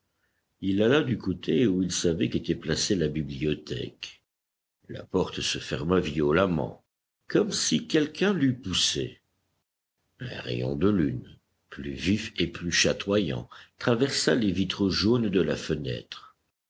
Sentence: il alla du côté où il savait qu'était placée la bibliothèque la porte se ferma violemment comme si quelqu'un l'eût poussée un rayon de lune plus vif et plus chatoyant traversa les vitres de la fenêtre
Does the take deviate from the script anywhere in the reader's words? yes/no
yes